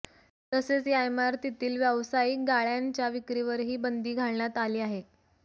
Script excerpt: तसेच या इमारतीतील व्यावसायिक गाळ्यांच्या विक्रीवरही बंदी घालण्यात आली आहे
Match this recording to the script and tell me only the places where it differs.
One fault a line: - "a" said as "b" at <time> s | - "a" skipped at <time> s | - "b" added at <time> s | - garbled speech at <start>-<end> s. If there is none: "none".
none